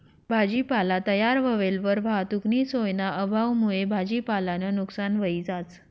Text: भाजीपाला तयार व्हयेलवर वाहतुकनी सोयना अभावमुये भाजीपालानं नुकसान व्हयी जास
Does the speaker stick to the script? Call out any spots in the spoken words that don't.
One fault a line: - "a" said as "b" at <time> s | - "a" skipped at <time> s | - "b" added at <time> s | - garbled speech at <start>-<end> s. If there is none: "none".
none